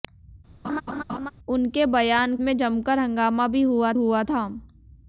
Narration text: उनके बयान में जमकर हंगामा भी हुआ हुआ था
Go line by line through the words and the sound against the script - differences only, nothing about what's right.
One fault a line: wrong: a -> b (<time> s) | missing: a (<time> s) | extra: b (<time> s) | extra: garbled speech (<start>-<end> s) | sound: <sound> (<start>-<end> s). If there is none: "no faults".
sound: laugh (0.6-1.3 s)